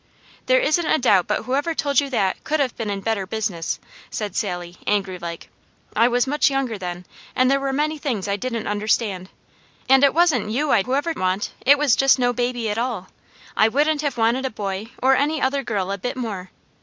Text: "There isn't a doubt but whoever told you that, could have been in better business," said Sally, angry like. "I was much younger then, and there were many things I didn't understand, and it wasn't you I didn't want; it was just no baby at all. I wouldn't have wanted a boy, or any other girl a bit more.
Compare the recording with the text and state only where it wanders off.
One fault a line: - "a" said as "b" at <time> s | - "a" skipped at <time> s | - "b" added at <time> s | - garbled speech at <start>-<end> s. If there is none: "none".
- "didn't" said as "whoever" at 10.8 s